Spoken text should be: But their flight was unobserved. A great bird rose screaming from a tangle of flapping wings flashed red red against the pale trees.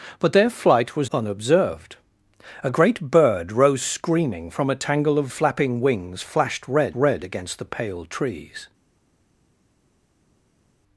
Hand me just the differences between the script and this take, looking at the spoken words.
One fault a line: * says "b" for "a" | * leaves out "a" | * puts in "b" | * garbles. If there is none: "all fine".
all fine